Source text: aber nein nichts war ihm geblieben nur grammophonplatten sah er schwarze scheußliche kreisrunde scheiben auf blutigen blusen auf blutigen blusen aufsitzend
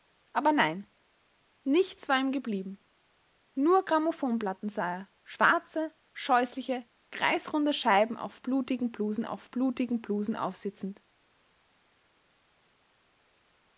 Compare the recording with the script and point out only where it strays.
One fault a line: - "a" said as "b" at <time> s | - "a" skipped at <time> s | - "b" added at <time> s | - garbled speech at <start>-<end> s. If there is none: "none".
none